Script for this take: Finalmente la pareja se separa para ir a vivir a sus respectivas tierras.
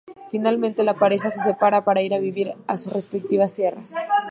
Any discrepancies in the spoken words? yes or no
no